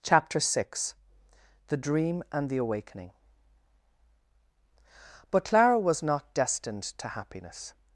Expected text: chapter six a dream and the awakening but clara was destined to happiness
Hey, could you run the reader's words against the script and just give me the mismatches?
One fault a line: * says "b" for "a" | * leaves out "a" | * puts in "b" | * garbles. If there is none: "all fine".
* says "the" for "a"
* puts in "not"